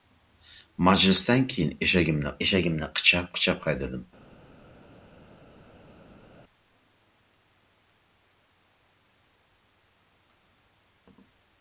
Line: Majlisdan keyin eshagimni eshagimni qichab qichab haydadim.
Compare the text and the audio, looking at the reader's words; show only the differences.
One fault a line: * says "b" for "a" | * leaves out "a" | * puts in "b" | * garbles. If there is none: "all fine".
all fine